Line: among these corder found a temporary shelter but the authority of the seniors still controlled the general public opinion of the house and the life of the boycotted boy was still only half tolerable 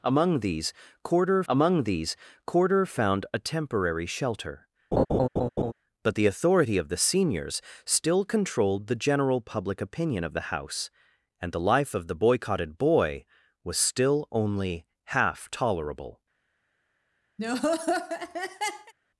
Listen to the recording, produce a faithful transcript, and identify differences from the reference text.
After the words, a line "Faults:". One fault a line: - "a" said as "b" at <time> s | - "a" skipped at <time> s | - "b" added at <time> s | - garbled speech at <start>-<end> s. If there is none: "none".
among these corder among these corder found a temporary shelter but the authority of the seniors still controlled the general public opinion of the house and the life of the boycotted boy was still only half tolerable
Faults:
- "among these corder" added at 1.5 s